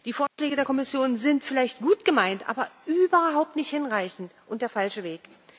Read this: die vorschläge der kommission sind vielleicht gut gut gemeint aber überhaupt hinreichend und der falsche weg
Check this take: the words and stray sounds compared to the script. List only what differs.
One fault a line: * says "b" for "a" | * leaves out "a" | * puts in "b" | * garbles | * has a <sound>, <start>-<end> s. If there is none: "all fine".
* has a dropout, 0.3-0.4 s
* leaves out "gut"
* puts in "nicht"